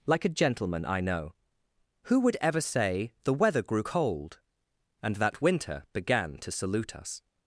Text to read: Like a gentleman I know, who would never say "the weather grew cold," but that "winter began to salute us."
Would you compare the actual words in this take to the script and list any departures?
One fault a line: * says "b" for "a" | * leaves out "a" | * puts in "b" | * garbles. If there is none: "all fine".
* says "ever" for "never"
* says "and" for "but"